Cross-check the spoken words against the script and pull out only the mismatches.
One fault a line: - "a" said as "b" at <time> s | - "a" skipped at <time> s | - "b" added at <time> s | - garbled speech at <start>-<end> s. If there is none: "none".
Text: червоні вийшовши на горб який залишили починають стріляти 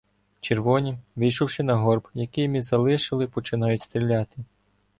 - "ми" added at 2.5 s